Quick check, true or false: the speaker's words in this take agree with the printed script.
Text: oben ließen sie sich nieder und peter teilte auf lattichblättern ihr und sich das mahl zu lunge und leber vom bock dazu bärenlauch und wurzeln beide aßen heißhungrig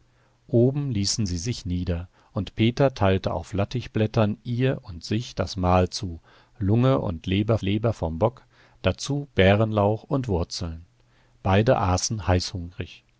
false